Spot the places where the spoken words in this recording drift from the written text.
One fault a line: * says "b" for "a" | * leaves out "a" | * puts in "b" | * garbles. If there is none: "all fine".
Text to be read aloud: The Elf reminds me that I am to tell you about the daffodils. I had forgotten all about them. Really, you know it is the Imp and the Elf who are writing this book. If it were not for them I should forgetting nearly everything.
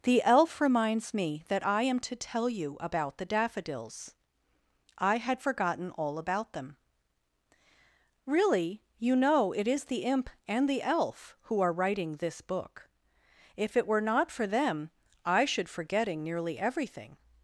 all fine